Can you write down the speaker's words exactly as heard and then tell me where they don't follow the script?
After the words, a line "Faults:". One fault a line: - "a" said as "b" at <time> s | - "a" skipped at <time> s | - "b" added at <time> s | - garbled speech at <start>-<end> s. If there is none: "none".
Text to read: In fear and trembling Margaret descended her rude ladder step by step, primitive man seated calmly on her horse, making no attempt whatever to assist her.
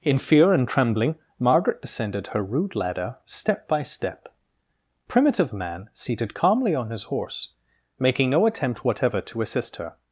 In fear and trembling Margaret descended her rude ladder step by step, primitive man seated calmly on his horse, making no attempt whatever to assist her.
Faults:
- "her" said as "his" at 6.9 s